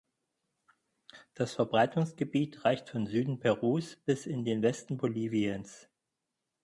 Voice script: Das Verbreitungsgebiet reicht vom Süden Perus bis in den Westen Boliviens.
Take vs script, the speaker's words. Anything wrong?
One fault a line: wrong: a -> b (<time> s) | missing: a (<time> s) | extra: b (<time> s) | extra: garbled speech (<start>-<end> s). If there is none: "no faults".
no faults